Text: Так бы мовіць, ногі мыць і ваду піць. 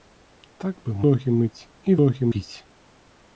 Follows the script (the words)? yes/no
no